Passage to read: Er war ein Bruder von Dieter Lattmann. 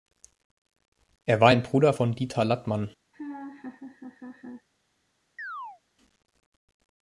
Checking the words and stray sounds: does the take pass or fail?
fail